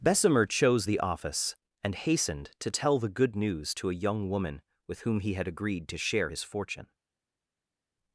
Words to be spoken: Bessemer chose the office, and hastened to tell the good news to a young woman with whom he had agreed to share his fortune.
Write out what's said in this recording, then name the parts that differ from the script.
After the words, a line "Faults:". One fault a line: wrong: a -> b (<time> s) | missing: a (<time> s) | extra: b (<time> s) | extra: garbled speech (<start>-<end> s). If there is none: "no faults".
Bessemer chose the office, and hastened to tell the good news to a young woman with whom he had agreed to share his fortune.
Faults:
no faults